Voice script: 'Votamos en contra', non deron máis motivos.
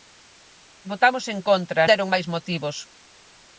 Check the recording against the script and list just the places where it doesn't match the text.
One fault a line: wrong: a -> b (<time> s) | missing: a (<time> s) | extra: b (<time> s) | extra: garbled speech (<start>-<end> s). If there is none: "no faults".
missing: non (1.9 s)